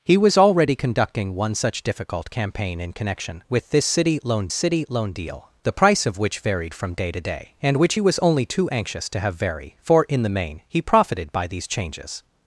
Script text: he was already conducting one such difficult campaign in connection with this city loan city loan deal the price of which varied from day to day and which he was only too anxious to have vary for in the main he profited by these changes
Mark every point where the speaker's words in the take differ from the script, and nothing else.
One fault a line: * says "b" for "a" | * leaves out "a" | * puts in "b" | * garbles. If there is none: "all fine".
all fine